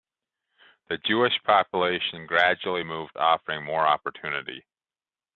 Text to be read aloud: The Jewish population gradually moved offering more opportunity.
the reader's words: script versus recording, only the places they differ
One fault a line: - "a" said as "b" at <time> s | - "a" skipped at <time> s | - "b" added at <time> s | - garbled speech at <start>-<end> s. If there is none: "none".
none